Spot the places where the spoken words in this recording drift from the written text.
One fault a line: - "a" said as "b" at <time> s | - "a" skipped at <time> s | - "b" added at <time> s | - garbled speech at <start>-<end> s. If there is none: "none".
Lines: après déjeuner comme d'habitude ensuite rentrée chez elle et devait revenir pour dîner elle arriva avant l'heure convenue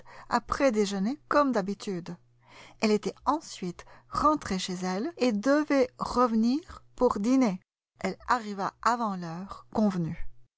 - "elle était" added at 2.8 s